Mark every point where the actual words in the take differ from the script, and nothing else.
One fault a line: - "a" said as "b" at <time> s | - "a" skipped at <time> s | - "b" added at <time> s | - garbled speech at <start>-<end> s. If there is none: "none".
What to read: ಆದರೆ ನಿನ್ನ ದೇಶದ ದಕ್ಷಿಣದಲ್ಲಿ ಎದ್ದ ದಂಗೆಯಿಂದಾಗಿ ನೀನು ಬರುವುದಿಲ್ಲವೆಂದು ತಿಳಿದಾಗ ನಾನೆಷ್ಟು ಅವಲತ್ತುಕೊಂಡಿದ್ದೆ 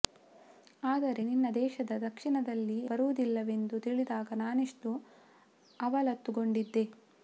- "ಎದ್ದ ದಂಗೆಯಿಂದಾಗಿ ನೀನು" skipped at 2.8 s